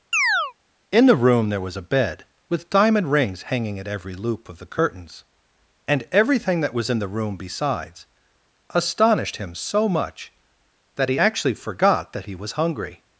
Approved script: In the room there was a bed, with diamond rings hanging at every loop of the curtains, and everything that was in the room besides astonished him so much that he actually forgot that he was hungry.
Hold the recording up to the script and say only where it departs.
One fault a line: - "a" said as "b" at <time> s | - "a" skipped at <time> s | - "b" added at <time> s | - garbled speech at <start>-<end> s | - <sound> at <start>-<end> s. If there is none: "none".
- chirp at 0.1-0.5 s